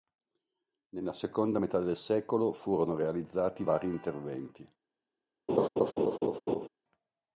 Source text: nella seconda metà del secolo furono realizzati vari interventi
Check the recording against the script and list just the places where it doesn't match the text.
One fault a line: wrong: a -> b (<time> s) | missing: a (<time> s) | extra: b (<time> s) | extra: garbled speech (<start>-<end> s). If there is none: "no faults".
no faults